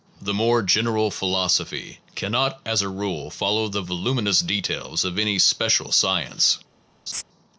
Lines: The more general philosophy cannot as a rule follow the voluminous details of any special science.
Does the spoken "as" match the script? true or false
true